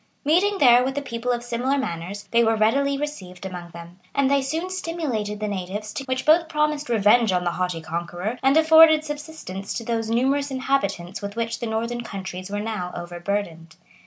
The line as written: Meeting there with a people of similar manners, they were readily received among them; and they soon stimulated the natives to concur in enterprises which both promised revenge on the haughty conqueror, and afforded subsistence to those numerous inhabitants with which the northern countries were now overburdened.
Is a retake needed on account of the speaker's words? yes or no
yes